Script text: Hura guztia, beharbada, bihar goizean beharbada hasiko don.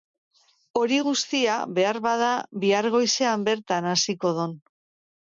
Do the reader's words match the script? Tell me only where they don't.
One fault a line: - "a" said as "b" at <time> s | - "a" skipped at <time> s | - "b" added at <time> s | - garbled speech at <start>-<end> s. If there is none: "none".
- "Hura" said as "Hori" at 0.8 s
- "beharbada" said as "bertan" at 3.5 s